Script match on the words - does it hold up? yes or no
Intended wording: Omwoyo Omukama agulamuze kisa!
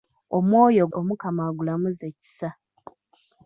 yes